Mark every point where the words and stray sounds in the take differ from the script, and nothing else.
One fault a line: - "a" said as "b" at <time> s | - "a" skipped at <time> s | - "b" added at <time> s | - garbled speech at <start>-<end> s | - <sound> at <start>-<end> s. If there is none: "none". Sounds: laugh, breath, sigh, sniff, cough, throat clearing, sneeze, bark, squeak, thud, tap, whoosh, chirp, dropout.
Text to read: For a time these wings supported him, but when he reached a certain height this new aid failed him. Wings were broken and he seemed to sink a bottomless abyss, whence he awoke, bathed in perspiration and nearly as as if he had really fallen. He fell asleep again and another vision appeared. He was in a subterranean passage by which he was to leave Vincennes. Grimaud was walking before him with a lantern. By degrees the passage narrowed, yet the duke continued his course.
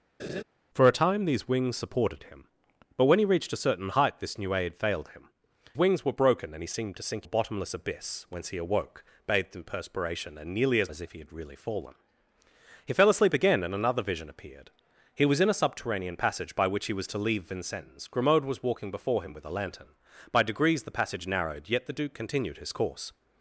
- laugh at 0.2-0.4 s